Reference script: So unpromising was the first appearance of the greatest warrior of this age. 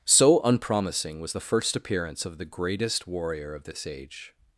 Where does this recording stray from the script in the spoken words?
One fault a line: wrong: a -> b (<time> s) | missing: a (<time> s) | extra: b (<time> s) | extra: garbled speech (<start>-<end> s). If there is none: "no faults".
no faults